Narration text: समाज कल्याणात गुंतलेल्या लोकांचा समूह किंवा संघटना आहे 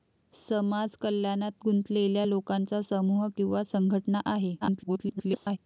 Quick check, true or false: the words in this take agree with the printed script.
false